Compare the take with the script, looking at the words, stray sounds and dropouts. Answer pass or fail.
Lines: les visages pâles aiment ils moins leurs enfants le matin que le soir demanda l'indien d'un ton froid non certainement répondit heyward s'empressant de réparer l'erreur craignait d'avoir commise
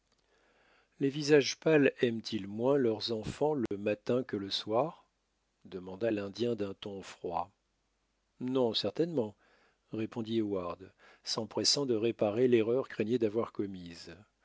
fail